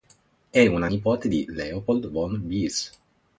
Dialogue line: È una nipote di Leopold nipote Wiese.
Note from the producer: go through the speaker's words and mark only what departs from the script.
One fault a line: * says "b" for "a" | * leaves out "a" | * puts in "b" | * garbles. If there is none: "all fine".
* says "von" for "nipote"